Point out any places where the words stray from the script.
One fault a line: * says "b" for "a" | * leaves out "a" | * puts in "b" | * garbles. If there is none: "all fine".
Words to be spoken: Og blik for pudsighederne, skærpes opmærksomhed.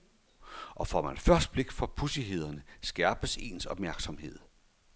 * puts in "får man først"
* puts in "ens"